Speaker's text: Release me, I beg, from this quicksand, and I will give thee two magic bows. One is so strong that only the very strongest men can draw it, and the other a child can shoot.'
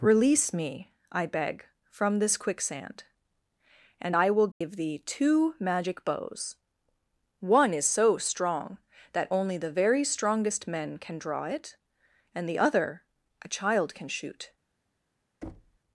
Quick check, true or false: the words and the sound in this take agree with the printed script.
false